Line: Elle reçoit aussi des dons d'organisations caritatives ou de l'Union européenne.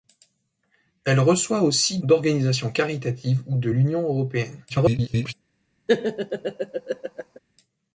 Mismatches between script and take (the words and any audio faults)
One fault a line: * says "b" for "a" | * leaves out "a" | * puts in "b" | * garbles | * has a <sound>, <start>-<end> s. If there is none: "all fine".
* leaves out "des dons"
* garbles
* has a laugh, 5.9-7.4 s